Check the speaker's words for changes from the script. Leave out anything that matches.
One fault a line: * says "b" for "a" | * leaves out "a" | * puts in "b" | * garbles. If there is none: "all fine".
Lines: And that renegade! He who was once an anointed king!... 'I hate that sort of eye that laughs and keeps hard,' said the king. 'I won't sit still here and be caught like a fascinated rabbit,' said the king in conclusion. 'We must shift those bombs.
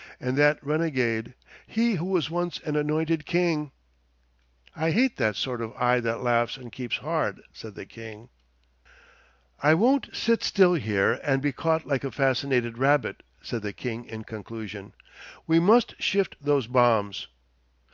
all fine